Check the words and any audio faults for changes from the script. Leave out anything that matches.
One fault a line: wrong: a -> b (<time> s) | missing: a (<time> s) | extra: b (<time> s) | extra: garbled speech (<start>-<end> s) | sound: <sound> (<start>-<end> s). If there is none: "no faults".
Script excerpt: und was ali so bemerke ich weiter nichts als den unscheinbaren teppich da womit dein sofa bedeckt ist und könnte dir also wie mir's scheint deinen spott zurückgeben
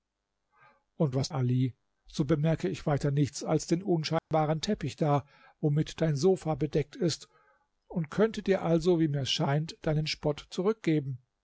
sound: dropout (4.2-4.3 s)